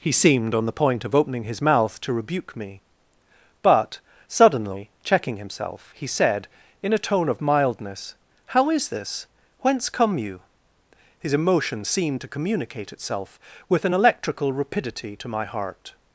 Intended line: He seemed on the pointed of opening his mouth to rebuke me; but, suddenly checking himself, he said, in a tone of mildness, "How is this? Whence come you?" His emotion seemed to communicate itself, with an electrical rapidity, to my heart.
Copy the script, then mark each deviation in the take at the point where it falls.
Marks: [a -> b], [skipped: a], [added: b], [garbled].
He seemed on the [pointed -> point] of opening his mouth to rebuke me; but, suddenly checking himself, he said, in a tone of mildness, "How is this? Whence come you?" His emotion seemed to communicate itself, with an electrical rapidity, to my heart.